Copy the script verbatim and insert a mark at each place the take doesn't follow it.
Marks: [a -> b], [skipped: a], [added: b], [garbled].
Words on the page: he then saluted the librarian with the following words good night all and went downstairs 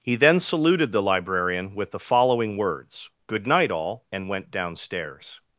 he then saluted the librarian with the following words good night all and went downstairs